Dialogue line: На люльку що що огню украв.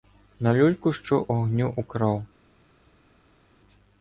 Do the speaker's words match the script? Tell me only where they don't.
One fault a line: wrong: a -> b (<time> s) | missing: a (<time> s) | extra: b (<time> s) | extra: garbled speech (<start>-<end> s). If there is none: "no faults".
missing: що (1.2 s)